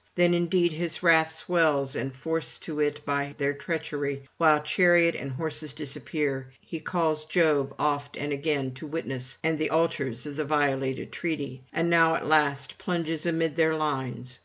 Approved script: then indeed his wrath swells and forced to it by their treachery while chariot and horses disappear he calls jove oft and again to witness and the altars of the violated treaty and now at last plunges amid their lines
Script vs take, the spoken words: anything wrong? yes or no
no